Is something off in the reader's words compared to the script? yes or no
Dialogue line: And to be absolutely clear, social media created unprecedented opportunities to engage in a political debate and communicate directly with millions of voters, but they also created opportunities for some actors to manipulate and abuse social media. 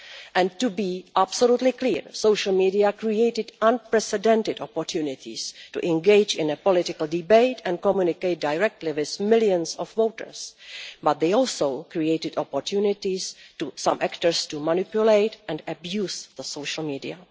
no